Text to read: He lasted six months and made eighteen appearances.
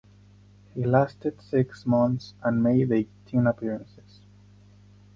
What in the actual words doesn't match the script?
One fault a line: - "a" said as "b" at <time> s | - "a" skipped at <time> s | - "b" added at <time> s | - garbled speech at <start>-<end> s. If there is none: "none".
none